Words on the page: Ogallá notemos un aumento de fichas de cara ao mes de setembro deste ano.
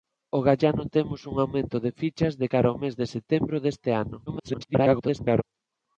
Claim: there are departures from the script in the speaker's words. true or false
true